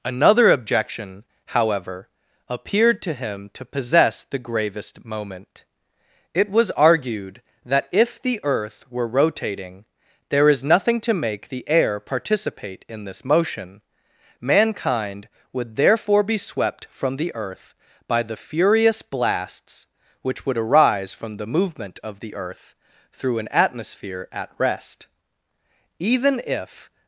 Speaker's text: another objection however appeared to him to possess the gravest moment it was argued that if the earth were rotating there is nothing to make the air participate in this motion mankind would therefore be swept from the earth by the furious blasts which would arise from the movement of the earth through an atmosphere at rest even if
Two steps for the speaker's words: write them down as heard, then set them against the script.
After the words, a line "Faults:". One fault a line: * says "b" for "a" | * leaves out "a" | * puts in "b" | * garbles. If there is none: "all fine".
another objection however appeared to him to possess the gravest moment it was argued that if the earth were rotating there is nothing to make the air participate in this motion mankind would therefore be swept from the earth by the furious blasts which would arise from the movement of the earth through an atmosphere at rest even if
Faults:
all fine